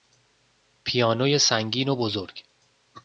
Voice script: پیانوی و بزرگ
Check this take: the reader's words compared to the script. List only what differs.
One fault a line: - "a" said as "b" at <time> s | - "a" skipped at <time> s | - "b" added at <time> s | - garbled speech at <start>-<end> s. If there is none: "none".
- "سنگین" added at 1.4 s